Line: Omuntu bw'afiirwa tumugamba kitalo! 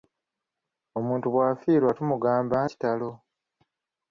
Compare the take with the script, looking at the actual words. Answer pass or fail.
pass